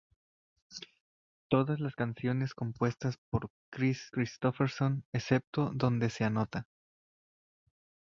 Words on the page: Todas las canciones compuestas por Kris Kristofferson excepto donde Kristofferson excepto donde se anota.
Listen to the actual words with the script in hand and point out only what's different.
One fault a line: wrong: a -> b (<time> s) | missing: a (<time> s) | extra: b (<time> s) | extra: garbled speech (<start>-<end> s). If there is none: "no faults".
missing: Kristofferson excepto donde (6.1 s)